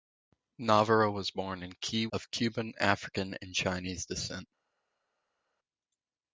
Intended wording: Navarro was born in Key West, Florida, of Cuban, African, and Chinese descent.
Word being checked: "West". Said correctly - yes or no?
no